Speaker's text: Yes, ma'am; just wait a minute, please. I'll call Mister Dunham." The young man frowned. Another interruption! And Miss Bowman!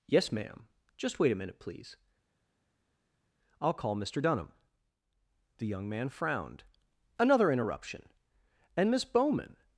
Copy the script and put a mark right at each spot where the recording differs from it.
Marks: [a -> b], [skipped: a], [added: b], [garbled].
Yes, ma'am; just wait a minute, please. I'll call Mister Dunham." The young man frowned. Another interruption! And Miss Bowman!